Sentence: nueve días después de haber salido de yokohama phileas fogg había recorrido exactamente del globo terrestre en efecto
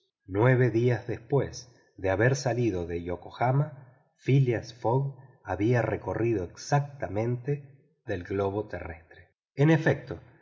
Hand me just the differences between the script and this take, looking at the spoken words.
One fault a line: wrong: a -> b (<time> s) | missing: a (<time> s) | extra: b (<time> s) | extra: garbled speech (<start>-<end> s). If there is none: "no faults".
no faults